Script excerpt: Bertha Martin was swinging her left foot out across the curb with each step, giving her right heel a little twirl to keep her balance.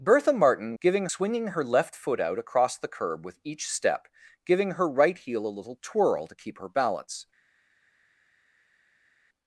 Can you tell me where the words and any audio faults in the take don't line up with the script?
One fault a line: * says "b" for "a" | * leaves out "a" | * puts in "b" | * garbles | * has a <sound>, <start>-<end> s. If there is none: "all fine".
* says "giving" for "was"